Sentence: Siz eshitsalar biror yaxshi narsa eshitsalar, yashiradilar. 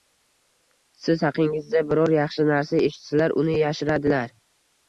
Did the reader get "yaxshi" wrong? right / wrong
right